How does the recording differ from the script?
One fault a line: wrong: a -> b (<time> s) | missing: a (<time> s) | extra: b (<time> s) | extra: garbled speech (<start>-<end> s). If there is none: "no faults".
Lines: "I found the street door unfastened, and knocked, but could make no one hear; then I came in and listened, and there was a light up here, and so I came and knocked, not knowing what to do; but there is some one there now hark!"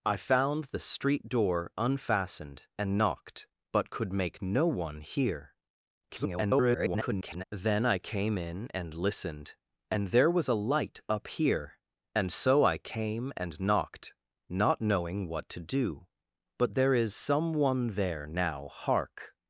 extra: garbled speech (6.1-7.4 s)